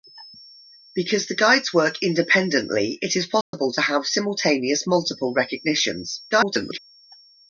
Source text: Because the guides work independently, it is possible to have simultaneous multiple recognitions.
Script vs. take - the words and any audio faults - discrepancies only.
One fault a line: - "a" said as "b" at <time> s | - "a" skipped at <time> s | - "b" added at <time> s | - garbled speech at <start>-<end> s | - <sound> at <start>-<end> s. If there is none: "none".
- dropout at 3.4-3.5 s
- garbled speech at 6.3-6.8 s